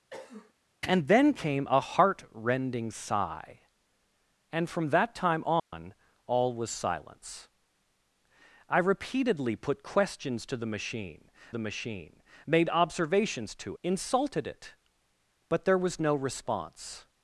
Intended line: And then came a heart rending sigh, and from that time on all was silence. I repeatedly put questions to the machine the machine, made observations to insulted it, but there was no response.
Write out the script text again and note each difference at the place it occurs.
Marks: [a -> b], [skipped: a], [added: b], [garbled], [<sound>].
[cough] And then came a heart rending sigh, and from that time on [dropout] all was silence. I repeatedly put questions to the machine the machine, made observations to insulted it, but there was no response.